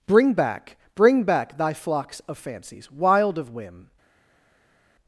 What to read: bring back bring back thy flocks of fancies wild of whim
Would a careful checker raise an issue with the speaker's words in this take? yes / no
no